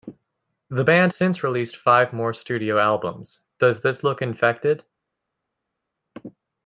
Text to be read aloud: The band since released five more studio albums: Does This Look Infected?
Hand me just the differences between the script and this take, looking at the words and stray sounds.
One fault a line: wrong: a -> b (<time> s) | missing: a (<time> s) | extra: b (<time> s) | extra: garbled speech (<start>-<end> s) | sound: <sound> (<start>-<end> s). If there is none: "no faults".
no faults